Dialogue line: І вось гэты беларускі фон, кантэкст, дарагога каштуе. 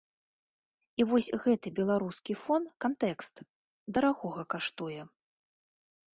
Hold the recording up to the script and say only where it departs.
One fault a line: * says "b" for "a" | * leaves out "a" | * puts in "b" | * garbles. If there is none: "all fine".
all fine